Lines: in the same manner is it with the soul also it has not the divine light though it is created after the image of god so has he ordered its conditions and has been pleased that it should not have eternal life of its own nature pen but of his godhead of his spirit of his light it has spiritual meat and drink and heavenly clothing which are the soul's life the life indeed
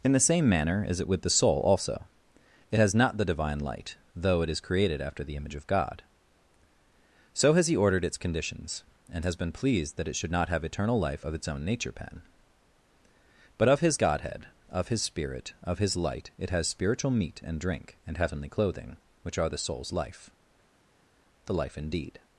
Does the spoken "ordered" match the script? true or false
true